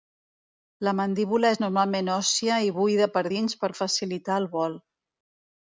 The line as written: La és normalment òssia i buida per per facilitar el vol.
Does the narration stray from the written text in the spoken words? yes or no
yes